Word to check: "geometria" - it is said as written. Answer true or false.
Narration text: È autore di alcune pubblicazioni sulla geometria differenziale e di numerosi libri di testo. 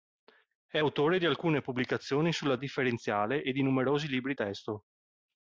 false